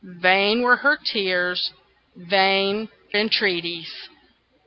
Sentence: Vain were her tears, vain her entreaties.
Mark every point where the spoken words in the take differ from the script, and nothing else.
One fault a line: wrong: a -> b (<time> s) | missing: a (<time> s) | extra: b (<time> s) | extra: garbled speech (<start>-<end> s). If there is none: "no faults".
missing: her (2.9 s)